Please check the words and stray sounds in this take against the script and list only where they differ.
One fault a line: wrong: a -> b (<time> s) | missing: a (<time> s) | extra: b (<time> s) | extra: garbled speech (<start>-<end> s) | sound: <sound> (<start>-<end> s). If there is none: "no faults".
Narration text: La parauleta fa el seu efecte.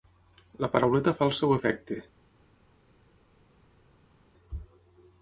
no faults